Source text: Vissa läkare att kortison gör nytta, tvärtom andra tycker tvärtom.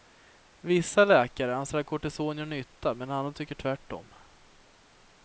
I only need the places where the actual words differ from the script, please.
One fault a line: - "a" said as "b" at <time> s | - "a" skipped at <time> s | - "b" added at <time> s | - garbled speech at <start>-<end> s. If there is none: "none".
- "anser" added at 1.6 s
- "tvärtom" said as "medan" at 3.0 s